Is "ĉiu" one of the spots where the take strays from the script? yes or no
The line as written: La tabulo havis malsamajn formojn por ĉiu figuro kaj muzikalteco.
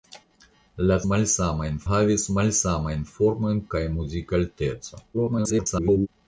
yes